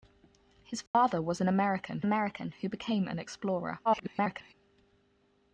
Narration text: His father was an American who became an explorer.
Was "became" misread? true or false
false